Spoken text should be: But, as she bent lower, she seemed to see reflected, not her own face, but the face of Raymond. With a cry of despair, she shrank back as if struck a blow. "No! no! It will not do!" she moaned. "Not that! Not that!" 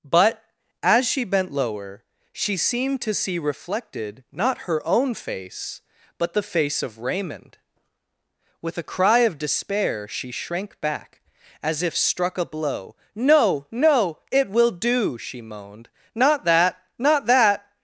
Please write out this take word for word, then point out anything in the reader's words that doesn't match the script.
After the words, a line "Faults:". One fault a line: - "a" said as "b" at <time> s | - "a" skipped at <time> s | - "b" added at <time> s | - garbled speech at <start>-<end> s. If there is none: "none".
But, as she bent lower, she seemed to see reflected, not her own face, but the face of Raymond. With a cry of despair, she shrank back as if struck a blow. "No! no! It will do!" she moaned. "Not that! Not that!"
Faults:
- "not" skipped at 14.7 s